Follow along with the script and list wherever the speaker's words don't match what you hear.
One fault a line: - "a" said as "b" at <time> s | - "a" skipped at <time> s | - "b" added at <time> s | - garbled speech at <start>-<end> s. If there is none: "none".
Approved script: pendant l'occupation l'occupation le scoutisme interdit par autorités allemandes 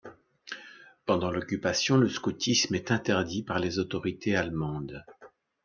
- "l'occupation" skipped at 2.0 s
- "est" added at 2.7 s
- "les" added at 3.6 s